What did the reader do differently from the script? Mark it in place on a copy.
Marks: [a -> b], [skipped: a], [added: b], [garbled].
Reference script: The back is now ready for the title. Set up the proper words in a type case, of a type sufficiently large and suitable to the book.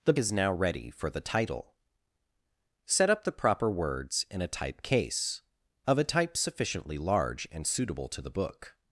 The [skipped: back] is now ready for the title. Set up the proper words in a type case, of a type sufficiently large and suitable to the book.